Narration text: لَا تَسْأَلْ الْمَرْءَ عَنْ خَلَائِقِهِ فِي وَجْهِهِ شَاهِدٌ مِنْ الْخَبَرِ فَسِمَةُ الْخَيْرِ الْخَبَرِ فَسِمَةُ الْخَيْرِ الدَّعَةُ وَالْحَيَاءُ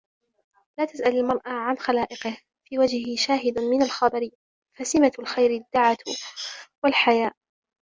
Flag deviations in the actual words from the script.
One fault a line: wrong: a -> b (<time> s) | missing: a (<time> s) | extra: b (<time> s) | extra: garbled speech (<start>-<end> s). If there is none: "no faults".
missing: الْخَبَرِ فَسِمَةُ الْخَيْرِ (5.5 s)